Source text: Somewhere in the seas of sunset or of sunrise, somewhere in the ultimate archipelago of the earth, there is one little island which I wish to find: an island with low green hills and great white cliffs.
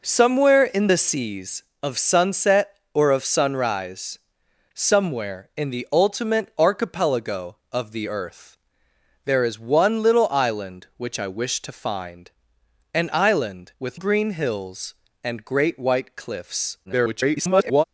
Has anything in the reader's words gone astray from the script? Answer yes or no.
yes